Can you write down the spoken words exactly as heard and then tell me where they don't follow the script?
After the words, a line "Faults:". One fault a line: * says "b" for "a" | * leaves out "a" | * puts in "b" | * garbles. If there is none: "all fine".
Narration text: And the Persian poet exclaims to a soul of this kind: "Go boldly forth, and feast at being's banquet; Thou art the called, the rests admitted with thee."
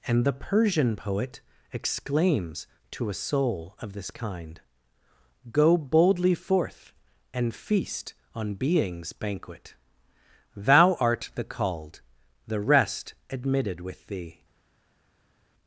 And the Persian poet exclaims to a soul of this kind: "Go boldly forth, and feast on being's banquet; Thou art the called, the rest admitted with thee."
Faults:
* says "on" for "at"
* says "rest" for "rests"